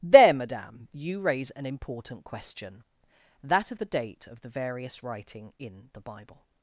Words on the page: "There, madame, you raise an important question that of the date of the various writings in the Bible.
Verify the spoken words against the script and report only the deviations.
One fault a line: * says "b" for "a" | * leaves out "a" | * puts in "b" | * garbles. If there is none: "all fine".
* says "writing" for "writings"